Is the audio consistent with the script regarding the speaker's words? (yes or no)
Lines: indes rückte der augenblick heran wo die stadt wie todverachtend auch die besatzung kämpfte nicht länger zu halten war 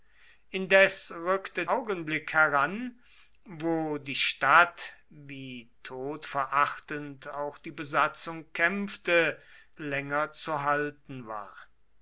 no